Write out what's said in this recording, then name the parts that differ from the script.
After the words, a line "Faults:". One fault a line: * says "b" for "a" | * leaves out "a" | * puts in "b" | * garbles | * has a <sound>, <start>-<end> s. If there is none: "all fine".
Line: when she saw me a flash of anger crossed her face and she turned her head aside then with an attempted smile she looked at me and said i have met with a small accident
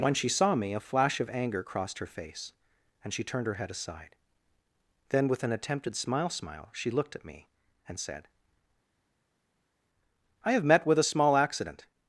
when she saw me a flash of anger crossed her face and she turned her head aside then with an attempted smile smile she looked at me and said i have met with a small accident
Faults:
* puts in "smile"